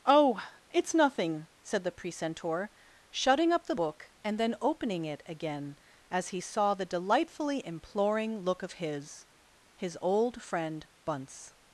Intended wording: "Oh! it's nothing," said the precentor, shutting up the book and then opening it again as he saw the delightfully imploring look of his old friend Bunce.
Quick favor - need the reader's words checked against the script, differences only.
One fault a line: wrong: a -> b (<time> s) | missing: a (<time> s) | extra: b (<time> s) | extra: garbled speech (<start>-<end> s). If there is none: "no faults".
extra: his (9.8 s)